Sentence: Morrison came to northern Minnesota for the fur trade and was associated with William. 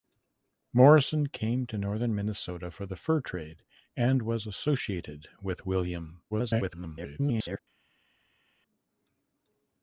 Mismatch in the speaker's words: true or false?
true